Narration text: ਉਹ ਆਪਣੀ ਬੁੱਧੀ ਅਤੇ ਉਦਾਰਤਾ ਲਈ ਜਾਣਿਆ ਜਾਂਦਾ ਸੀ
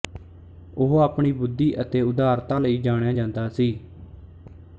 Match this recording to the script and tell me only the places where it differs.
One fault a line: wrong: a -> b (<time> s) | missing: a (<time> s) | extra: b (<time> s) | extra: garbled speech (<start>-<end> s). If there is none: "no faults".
no faults